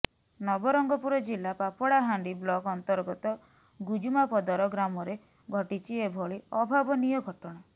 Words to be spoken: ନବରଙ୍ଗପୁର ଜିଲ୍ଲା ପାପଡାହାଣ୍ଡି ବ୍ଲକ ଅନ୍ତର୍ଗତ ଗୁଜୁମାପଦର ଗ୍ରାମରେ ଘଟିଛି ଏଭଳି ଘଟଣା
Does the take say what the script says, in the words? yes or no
no